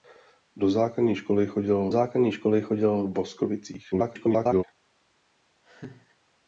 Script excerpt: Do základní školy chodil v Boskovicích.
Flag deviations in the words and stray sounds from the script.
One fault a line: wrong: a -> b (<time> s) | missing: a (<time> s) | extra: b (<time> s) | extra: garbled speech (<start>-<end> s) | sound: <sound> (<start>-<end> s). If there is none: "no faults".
extra: základní školy chodil (1.9 s)
extra: garbled speech (3.9-4.6 s)
sound: laugh (5.6-6.2 s)